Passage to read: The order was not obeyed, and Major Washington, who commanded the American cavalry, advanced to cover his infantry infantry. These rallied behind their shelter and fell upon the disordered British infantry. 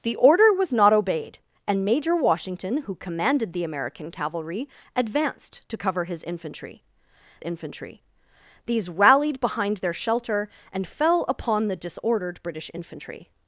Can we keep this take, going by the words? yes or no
yes